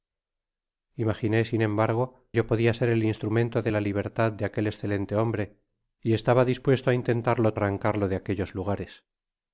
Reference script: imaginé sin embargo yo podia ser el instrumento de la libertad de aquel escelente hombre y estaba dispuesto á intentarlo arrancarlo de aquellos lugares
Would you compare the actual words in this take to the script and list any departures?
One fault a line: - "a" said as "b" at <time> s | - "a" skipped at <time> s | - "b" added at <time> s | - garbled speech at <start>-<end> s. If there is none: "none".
none